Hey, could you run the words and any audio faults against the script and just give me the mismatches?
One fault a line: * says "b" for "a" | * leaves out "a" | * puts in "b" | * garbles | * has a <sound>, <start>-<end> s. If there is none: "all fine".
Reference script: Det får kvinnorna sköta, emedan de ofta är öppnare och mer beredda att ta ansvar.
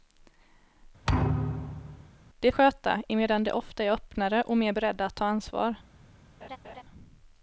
* has a thud, 1.1-2.1 s
* leaves out "får kvinnorna"
* has a laugh, 6.4-6.8 s